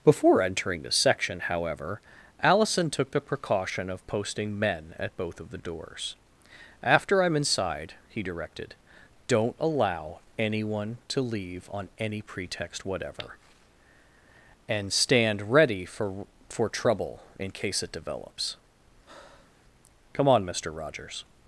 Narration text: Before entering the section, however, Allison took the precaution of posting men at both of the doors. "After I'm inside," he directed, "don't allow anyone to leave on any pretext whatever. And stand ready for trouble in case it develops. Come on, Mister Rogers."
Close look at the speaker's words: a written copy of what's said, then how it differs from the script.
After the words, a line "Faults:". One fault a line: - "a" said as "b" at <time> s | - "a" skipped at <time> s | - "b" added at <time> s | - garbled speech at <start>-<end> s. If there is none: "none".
Before entering the section, however, Allison took the precaution of posting men at both of the doors. "After I'm inside," he directed, "don't allow anyone to leave on any pretext whatever. And stand ready for for trouble in case it develops. Come on, Mister Rogers."
Faults:
- "for" added at 16.5 s